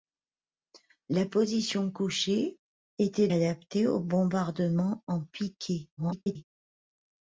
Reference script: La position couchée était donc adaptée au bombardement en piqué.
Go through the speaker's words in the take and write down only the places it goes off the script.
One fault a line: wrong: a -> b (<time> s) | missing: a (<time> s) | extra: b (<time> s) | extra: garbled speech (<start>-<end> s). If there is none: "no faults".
missing: donc (3.3 s)
extra: garbled speech (6.0-6.4 s)